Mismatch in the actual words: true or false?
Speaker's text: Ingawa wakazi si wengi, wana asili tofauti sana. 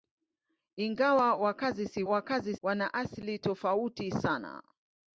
true